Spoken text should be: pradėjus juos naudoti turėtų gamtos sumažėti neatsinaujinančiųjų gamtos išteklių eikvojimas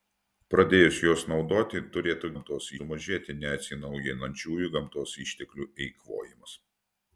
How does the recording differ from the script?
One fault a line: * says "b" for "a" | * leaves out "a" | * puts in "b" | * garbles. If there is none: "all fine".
all fine